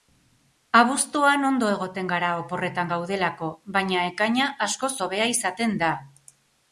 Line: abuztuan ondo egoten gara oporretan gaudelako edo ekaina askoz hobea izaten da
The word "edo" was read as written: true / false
false